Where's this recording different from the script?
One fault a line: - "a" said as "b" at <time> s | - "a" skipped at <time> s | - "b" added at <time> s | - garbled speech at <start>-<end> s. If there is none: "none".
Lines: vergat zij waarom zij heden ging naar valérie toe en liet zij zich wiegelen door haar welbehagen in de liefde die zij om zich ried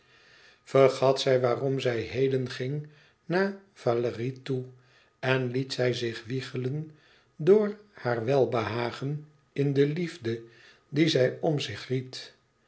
none